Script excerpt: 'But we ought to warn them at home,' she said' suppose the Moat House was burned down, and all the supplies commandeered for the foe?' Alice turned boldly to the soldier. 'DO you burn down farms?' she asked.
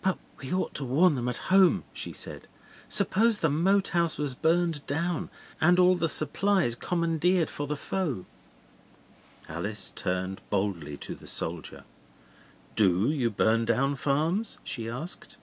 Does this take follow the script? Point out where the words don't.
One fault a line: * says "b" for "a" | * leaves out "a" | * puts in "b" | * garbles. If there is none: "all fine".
all fine